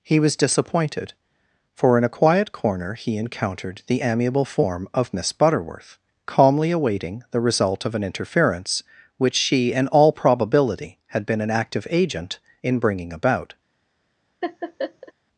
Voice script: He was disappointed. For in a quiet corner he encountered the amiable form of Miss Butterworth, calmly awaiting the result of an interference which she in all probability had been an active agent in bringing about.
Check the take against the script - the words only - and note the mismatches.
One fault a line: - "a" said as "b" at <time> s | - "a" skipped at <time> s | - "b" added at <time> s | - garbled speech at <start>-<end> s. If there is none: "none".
none